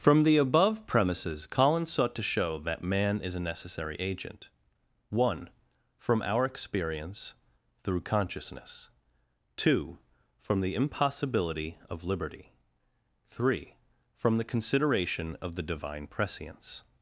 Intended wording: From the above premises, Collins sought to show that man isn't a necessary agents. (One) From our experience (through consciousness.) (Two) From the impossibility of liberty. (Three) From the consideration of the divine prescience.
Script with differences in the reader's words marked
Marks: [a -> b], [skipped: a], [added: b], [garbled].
From the above premises, Collins sought to show that man [isn't -> is] a necessary [agents. -> agent] (One) From our experience (through consciousness.) (Two) From the impossibility of liberty. (Three) From the consideration of the divine prescience.